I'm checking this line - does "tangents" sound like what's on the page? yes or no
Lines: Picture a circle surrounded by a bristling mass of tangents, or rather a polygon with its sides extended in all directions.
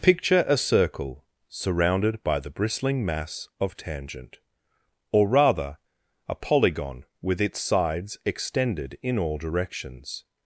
no